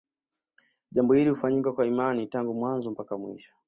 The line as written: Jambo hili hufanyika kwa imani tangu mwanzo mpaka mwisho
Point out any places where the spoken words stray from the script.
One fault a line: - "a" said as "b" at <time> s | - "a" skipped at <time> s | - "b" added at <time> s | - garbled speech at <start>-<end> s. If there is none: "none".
none